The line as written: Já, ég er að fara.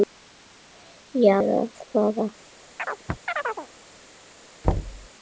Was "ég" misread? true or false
true